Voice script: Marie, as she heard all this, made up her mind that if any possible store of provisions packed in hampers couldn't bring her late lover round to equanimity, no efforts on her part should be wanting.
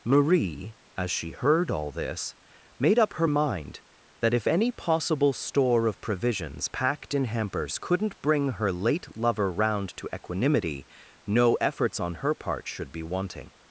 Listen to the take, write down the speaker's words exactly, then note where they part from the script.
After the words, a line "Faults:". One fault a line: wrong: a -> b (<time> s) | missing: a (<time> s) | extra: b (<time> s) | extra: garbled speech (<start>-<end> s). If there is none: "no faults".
Marie, as she heard all this, made up her mind that if any possible store of provisions packed in hampers couldn't bring her late lover round to equanimity, no efforts on her part should be wanting.
Faults:
no faults